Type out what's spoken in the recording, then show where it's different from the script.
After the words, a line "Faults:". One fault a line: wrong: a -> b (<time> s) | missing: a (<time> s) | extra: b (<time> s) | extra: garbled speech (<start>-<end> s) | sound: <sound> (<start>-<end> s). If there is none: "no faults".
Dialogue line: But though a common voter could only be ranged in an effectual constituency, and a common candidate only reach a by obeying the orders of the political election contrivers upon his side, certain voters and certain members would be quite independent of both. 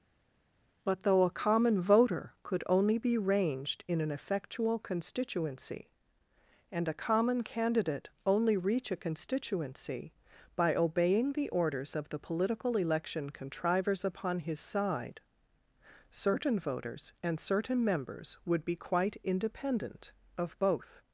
But though a common voter could only be ranged in an effectual constituency, and a common candidate only reach a constituency by obeying the orders of the political election contrivers upon his side, certain voters and certain members would be quite independent of both.
Faults:
extra: constituency (9.0 s)